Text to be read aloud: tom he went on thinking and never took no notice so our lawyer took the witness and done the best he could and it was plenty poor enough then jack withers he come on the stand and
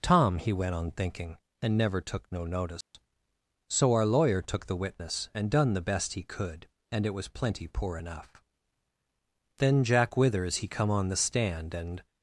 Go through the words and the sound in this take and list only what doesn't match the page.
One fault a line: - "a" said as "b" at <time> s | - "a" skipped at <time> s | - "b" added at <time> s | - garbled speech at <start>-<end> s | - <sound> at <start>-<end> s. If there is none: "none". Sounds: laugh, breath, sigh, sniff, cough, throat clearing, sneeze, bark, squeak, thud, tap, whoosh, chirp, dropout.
- dropout at 2.8-2.9 s